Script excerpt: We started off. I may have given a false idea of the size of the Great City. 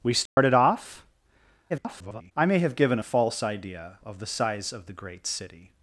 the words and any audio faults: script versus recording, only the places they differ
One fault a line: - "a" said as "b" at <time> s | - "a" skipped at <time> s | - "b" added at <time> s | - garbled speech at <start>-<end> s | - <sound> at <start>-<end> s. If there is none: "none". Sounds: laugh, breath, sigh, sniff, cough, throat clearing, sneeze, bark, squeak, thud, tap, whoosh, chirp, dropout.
- dropout at 0.3-0.4 s
- garbled speech at 1.7-2.3 s